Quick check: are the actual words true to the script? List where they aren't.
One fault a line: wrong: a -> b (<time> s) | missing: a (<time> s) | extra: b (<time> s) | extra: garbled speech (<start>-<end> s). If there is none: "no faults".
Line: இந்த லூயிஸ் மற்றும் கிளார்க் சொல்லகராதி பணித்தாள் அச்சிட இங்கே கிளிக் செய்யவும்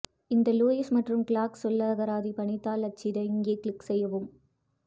no faults